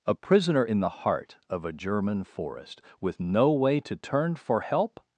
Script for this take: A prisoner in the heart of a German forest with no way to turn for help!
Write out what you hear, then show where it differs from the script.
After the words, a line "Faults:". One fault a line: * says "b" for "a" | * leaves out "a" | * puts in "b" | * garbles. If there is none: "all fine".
A prisoner in the heart of a German forest with no way to turn for help!
Faults:
all fine